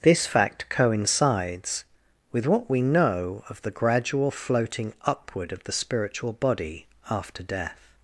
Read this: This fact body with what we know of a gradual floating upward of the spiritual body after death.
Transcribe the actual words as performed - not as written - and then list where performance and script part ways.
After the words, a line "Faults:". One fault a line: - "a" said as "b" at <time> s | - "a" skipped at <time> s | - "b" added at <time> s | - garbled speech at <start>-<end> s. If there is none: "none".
This fact coincides with what we know of the gradual floating upward of the spiritual body after death.
Faults:
- "body" said as "coincides" at 0.7 s
- "a" said as "the" at 3.6 s